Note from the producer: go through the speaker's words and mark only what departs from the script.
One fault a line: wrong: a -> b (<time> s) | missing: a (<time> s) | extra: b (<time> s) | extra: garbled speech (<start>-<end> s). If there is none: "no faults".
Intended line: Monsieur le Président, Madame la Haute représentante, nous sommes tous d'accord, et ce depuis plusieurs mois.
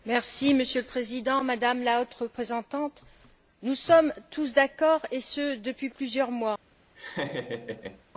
no faults